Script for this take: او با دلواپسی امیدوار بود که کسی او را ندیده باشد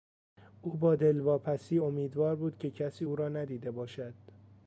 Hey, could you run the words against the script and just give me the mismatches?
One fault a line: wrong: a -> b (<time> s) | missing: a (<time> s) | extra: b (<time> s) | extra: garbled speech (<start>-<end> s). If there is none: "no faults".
no faults